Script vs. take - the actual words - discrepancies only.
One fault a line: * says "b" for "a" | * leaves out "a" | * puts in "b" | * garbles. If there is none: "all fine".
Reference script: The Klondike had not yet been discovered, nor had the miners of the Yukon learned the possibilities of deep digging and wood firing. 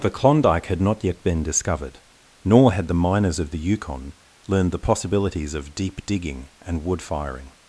all fine